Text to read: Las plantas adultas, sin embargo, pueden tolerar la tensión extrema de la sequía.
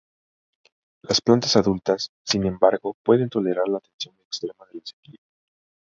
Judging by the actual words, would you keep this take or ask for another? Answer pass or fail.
pass